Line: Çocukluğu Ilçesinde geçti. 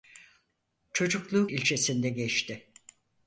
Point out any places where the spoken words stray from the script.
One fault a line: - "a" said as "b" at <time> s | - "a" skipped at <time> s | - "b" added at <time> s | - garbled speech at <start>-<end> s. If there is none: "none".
none